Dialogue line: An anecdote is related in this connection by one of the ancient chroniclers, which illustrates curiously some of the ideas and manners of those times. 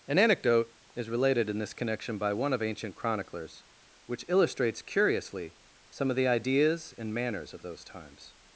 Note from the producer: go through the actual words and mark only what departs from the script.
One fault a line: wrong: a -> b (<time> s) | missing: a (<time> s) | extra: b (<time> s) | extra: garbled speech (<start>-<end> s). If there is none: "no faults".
missing: the (2.6 s)